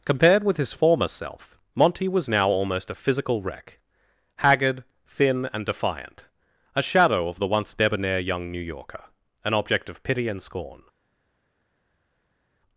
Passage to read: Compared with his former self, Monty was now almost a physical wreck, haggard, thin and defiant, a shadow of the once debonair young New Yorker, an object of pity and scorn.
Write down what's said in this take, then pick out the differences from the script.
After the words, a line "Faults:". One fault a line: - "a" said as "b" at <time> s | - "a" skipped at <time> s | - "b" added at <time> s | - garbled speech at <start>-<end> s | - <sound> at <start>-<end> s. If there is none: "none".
Compared with his former self, Monty was now almost a physical wreck, haggard, thin and defiant, a shadow of the once debonair young New Yorker, an object of pity and scorn.
Faults:
none